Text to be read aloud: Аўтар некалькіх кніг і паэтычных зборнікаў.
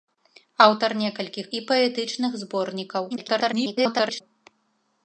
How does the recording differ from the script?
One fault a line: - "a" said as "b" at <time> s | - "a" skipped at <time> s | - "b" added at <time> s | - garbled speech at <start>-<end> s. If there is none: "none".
- "кніг" skipped at 1.4 s
- garbled speech at 3.1-4.2 s